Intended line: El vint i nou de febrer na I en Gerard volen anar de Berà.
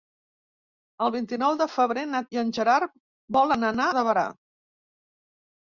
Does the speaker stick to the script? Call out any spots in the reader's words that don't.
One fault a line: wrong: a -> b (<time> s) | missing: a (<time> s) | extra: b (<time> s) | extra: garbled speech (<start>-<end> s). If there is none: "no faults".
no faults